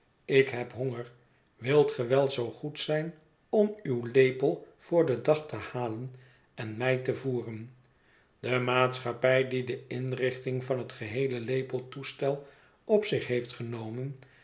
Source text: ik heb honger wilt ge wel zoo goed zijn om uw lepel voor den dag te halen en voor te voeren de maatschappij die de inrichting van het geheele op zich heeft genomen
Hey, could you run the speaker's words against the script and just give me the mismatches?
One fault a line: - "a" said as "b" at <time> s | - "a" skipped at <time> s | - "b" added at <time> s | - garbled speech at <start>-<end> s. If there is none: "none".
- "voor" said as "mij" at 6.8 s
- "lepeltoestel" added at 11.4 s